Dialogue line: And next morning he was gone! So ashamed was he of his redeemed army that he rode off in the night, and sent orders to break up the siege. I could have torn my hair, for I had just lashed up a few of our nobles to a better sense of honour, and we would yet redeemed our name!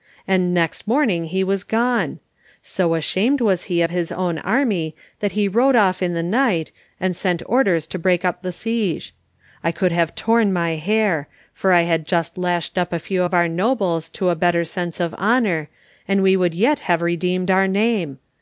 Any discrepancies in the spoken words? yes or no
yes